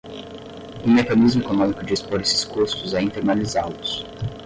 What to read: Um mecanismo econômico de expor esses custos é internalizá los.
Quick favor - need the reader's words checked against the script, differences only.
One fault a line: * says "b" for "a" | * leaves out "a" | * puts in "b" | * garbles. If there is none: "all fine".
all fine